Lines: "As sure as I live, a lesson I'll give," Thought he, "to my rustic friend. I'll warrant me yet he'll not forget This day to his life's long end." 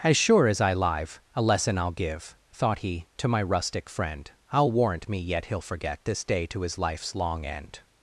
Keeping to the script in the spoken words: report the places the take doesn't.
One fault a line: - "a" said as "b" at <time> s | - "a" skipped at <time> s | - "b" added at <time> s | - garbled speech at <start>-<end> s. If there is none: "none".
- "not" skipped at 5.6 s